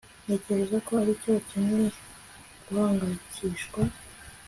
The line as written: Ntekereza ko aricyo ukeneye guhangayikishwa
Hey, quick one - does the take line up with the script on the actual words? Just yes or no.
yes